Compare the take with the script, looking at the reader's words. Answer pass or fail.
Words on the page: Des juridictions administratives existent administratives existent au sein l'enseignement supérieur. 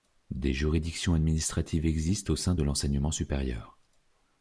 fail